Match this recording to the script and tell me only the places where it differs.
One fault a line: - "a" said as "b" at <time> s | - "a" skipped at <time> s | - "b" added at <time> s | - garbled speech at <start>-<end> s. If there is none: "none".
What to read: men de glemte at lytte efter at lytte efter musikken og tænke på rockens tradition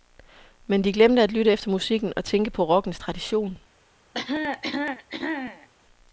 - "at lytte efter" skipped at 1.7 s